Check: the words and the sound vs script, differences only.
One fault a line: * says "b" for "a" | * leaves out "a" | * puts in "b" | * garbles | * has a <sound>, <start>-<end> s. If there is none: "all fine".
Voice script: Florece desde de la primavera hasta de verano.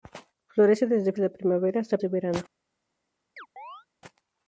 * has a chirp, 3.4-3.9 s